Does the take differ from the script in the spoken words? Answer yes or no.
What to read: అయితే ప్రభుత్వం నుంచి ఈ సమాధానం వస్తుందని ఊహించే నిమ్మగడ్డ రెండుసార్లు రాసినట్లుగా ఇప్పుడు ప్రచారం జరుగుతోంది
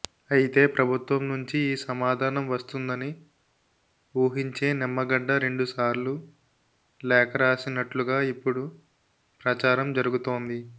yes